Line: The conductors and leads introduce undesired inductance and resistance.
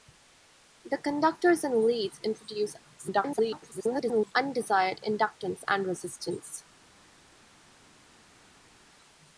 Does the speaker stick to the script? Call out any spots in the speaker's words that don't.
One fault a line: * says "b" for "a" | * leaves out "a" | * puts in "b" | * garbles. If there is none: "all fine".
* garbles